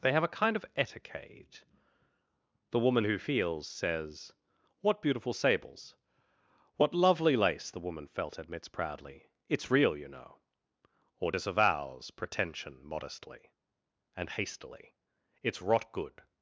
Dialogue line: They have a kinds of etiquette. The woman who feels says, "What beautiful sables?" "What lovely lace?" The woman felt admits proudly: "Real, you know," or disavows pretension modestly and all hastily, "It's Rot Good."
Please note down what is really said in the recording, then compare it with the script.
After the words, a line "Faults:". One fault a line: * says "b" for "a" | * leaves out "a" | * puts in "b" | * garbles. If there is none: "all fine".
They have a kind of etiquette. The woman who feels says, "What beautiful sables?" "What lovely lace?" The woman felt admits proudly: "It's Real, you know," or disavows pretension modestly and hastily, "It's Rot Good."
Faults:
* says "kind" for "kinds"
* puts in "It's"
* leaves out "all"